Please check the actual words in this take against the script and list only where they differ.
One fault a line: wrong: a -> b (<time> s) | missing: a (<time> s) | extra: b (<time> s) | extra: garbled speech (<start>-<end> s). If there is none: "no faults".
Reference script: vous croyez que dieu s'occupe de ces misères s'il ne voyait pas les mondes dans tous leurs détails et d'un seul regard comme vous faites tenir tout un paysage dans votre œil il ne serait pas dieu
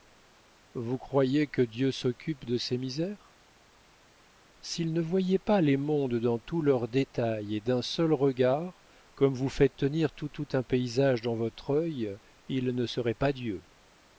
extra: tout (10.3 s)